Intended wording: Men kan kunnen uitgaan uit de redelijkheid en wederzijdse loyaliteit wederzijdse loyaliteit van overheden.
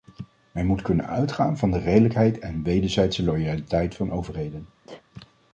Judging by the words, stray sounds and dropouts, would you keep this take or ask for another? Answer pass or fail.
fail